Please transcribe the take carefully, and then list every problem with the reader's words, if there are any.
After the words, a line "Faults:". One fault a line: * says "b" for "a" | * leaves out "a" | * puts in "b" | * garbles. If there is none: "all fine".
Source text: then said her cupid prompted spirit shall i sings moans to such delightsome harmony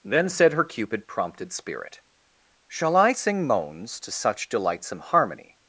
then said her cupid prompted spirit shall i sing moans to such delightsome harmony
Faults:
* says "sing" for "sings"